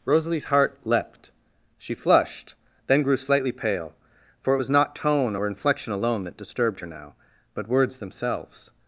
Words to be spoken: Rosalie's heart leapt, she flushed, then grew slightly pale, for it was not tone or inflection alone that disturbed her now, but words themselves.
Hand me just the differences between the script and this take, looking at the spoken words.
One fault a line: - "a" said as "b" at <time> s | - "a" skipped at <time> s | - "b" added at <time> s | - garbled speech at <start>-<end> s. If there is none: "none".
none